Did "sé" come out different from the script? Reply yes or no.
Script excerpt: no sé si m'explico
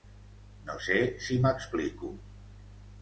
no